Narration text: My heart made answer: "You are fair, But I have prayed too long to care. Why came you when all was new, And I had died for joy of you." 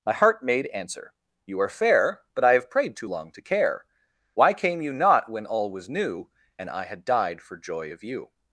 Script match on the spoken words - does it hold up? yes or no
no